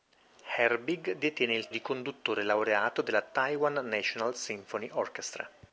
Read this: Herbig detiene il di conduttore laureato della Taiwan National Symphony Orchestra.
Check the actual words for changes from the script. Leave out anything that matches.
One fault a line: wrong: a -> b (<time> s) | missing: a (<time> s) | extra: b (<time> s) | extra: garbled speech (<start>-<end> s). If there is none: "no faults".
no faults